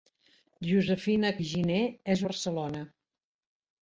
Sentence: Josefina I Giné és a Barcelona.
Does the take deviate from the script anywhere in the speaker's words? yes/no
no